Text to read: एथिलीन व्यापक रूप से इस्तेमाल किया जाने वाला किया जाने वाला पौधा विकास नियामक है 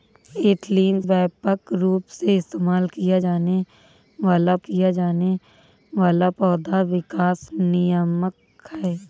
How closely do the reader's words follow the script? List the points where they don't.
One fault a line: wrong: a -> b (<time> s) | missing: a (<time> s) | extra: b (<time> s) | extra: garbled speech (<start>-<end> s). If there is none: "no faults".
no faults